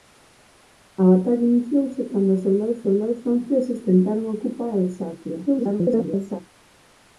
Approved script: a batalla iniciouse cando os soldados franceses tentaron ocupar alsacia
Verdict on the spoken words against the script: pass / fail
fail